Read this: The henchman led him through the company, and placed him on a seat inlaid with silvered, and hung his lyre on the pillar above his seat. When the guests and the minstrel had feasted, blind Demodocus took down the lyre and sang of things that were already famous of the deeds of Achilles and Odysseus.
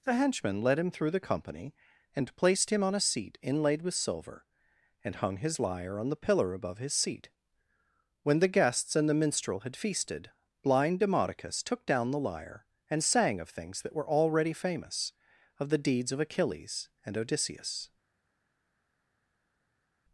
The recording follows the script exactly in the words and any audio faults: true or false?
false